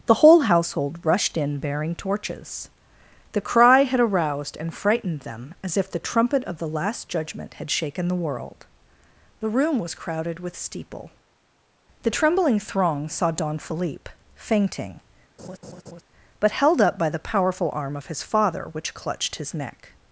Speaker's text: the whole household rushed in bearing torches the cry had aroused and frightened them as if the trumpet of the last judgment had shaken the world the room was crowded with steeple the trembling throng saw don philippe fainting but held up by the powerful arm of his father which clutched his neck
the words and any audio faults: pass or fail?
fail